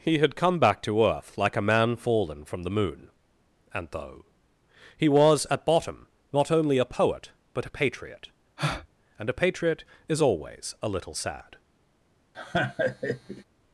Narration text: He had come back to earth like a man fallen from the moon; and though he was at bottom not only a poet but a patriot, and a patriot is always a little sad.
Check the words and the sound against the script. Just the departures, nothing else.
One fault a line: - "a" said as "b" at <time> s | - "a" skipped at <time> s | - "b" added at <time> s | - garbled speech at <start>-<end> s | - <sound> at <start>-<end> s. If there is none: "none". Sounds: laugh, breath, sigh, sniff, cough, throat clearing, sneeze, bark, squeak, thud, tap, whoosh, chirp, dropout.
- breath at 8.6-8.9 s
- laugh at 12.3-13.4 s